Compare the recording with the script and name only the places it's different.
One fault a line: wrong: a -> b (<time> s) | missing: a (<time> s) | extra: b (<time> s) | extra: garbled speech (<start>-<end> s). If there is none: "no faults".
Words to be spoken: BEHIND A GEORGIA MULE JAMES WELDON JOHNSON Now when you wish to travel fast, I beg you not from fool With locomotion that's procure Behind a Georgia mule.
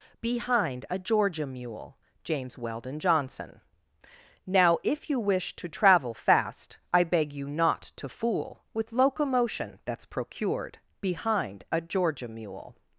wrong: when -> if (4.8 s)
wrong: from -> to (8.0 s)
wrong: procure -> procured (10.1 s)